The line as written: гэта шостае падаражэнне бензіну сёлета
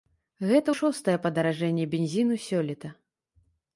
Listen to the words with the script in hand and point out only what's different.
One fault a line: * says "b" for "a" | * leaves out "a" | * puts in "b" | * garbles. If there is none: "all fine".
all fine